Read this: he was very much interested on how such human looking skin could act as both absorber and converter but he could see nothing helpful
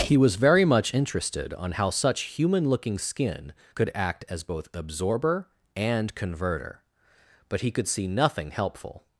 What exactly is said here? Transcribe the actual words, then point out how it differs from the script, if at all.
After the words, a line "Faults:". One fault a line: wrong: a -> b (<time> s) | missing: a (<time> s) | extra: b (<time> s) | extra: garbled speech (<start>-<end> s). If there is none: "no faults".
he was very much interested on how such human looking skin could act as both absorber and converter but he could see nothing helpful
Faults:
no faults